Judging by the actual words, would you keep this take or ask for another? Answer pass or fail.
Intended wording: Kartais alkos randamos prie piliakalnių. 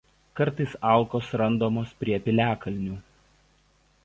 pass